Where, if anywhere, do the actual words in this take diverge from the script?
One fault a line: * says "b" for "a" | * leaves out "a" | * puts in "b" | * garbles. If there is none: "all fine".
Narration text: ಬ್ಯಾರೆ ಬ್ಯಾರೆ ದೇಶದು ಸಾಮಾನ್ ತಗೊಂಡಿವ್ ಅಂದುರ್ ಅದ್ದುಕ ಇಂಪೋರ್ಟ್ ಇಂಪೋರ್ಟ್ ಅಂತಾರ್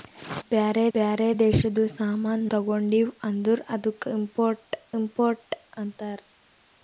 all fine